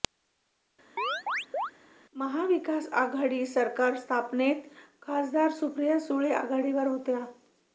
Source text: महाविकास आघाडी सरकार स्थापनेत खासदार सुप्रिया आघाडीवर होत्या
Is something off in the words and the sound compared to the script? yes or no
yes